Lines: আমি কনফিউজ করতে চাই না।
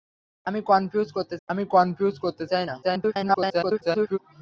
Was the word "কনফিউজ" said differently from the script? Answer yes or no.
no